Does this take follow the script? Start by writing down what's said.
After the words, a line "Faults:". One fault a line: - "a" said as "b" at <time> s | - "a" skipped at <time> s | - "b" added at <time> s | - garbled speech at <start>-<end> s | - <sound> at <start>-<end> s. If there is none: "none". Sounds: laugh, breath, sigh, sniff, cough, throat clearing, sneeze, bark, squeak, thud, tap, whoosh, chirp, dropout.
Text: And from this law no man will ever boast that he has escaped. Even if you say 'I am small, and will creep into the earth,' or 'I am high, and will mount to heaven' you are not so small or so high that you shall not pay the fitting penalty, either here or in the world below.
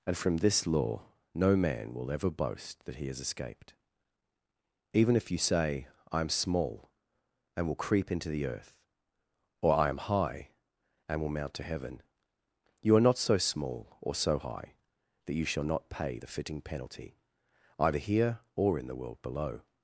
And from this law no man will ever boast that he has escaped. Even if you say 'I am small, and will creep into the earth,' or 'I am high, and will mount to heaven' you are not so small or so high that you shall not pay the fitting penalty, either here or in the world below.
Faults:
none